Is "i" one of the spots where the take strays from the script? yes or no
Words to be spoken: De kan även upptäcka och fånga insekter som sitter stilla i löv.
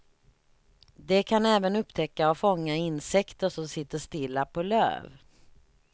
yes